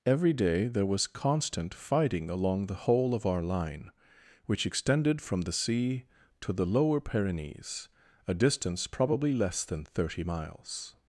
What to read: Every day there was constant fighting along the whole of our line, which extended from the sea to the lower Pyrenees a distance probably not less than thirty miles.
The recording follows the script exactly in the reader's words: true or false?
false